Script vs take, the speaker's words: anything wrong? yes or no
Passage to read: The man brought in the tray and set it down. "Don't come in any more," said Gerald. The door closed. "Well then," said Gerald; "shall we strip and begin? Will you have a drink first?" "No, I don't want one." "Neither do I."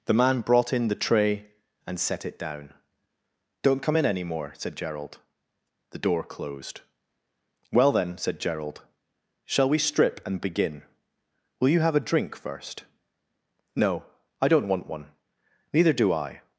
no